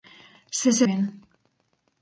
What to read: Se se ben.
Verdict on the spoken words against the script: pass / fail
pass